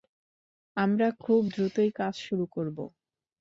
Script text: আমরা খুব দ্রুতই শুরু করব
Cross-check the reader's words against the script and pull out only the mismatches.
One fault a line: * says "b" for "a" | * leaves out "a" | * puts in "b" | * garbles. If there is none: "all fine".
* puts in "কাজ"